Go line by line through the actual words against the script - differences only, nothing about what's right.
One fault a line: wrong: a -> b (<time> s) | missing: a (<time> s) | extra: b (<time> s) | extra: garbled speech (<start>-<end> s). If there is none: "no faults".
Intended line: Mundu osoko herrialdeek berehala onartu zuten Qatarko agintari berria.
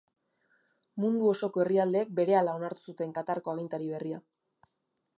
no faults